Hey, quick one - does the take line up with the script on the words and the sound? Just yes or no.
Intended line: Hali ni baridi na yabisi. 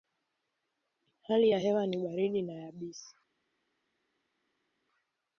no